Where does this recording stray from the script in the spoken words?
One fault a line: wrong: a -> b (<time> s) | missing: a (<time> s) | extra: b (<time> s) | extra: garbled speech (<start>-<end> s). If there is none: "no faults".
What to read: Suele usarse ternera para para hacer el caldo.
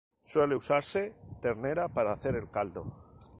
missing: para (2.1 s)